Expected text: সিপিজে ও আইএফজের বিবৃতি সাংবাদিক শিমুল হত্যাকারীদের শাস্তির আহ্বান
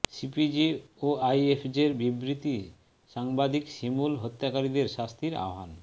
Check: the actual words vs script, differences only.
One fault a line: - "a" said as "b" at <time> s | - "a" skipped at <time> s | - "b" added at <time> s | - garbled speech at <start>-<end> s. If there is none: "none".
none